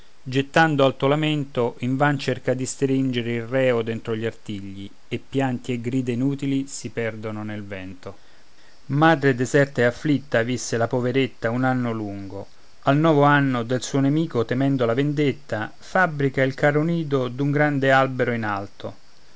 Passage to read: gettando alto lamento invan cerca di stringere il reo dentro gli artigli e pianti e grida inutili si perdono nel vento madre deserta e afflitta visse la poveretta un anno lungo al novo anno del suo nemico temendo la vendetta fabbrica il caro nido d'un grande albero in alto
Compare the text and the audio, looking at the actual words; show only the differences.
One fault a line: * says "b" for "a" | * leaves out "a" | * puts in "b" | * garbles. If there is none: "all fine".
all fine